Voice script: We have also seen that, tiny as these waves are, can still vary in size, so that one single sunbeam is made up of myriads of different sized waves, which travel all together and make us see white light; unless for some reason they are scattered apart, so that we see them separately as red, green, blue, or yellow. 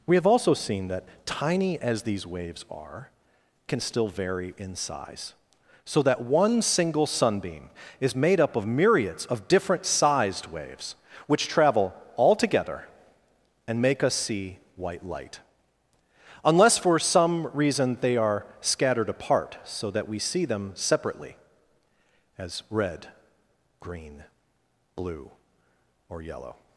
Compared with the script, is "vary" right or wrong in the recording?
right